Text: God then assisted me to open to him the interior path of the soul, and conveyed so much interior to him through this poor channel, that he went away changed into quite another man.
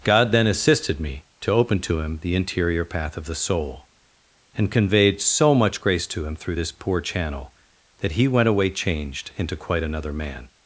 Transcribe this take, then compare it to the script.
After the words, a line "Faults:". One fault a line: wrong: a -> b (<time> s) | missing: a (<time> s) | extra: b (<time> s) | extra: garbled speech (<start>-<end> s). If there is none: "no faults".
God then assisted me to open to him the interior path of the soul, and conveyed so much grace to him through this poor channel, that he went away changed into quite another man.
Faults:
wrong: interior -> grace (5.8 s)